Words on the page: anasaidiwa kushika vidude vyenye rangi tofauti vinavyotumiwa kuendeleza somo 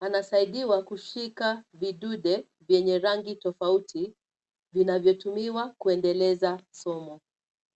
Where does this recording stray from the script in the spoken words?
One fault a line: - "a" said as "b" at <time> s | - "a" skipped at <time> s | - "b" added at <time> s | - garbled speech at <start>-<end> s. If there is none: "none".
none